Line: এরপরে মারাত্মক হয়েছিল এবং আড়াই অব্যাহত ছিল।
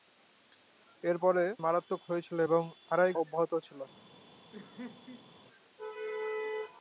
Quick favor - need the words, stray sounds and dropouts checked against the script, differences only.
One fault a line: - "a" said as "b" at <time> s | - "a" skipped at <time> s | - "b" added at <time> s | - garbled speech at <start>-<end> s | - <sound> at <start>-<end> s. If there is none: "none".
- laugh at 4.5-5.3 s